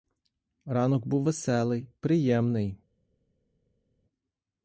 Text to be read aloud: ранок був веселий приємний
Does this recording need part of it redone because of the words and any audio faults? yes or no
no